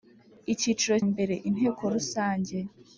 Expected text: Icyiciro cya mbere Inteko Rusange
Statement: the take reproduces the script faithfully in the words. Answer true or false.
false